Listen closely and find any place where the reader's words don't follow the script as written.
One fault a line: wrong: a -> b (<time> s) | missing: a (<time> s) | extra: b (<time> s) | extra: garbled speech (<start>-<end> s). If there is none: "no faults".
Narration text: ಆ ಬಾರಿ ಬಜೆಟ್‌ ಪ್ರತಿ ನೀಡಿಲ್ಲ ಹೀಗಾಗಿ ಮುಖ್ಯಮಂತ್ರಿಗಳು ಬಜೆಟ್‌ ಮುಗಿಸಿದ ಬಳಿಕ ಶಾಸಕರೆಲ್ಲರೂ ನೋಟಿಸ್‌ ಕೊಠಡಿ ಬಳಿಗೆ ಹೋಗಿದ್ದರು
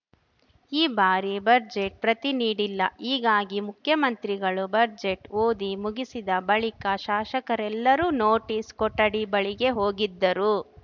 wrong: ಆ -> ಈ (0.7 s)
extra: ಓದಿ (5.4 s)